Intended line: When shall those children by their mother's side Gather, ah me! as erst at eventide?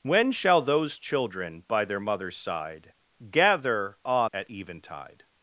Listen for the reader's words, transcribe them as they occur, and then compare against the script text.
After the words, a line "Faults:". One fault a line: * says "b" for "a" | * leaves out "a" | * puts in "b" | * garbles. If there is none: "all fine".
When shall those children by their mother's side Gather, ah at eventide?
Faults:
* leaves out "me as erst"